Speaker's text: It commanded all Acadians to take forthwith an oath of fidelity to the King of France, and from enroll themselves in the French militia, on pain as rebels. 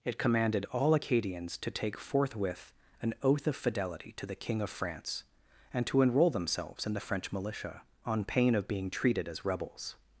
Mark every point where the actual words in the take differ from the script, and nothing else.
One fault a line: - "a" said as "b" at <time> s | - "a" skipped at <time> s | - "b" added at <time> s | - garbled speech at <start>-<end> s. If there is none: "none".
- "from" said as "to" at 5.9 s
- "of being treated" added at 8.6 s